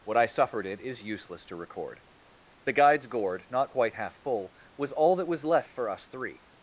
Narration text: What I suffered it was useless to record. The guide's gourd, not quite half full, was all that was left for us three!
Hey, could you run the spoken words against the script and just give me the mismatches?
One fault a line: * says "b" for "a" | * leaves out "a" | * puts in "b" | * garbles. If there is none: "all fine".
* says "is" for "was"